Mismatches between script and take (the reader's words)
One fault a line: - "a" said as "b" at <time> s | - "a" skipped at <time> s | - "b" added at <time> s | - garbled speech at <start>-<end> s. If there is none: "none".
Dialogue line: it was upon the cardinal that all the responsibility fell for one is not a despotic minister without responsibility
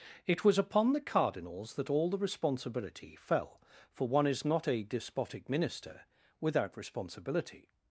- "cardinal" said as "cardinals" at 1.0 s